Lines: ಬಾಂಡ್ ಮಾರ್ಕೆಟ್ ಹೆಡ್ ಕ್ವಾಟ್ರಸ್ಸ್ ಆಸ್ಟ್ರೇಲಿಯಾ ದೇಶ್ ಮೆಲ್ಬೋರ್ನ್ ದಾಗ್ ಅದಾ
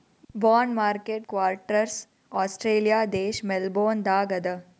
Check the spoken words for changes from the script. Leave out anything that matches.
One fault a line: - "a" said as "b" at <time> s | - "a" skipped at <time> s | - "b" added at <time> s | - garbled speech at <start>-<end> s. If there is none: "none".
- "ಹೆಡ್" skipped at 1.3 s